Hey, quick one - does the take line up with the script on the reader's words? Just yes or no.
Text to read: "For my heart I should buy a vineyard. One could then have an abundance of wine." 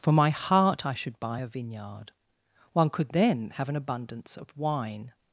yes